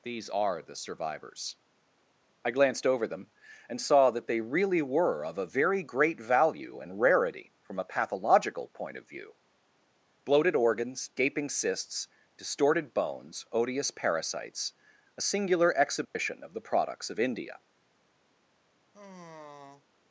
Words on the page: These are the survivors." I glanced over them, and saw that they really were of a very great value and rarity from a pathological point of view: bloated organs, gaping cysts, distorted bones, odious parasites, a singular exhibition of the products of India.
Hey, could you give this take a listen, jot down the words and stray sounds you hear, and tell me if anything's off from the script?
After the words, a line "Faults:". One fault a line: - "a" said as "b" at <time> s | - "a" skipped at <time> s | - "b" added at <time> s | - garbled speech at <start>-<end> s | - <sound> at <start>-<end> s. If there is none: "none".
These are the survivors." I glanced over them, and saw that they really were of a very great value and rarity from a pathological point of view: bloated organs, gaping cysts, distorted bones, odious parasites, a singular exhibition of the products of India.
Faults:
- dropout at 16.0-16.2 s
- sigh at 18.9-19.8 s